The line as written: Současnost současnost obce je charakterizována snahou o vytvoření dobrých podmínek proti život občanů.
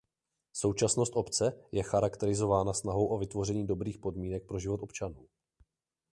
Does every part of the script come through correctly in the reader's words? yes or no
no